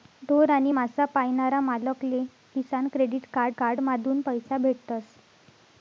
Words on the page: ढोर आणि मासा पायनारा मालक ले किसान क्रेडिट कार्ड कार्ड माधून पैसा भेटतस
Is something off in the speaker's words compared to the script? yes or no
no